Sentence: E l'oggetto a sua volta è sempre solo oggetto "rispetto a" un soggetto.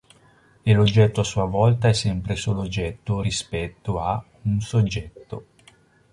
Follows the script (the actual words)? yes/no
yes